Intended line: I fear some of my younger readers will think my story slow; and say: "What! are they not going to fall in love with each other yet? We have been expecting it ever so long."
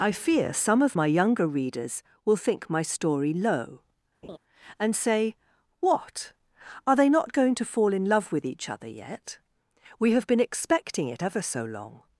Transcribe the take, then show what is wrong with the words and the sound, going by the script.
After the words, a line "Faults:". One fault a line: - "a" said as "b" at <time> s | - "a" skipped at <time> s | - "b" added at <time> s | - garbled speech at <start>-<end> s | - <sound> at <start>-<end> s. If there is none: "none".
I fear some of my younger readers will think my story low; and say: "What! are they not going to fall in love with each other yet? We have been expecting it ever so long."
Faults:
- "slow" said as "low" at 3.3 s
- laugh at 4.2-4.4 s